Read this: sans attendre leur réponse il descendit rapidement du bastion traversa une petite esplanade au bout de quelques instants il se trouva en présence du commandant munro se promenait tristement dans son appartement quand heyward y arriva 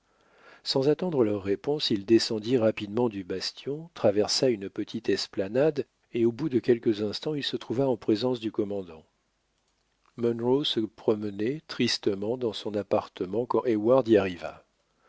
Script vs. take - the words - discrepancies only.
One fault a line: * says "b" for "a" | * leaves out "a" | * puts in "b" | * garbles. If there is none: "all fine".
* puts in "et"